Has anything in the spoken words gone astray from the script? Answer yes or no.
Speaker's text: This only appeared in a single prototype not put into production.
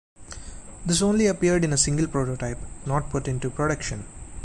no